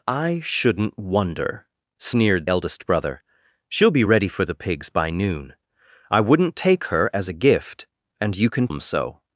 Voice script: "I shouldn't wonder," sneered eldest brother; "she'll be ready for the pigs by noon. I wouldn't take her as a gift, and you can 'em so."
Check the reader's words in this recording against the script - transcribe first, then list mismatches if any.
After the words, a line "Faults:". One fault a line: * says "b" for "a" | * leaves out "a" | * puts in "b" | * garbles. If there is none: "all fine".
"I shouldn't wonder," sneered eldest brother; "she'll be ready for the pigs by noon. I wouldn't take her as a gift, and you can 'em so."
Faults:
all fine